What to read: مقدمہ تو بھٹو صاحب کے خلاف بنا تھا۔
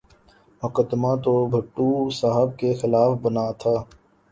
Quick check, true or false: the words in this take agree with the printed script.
true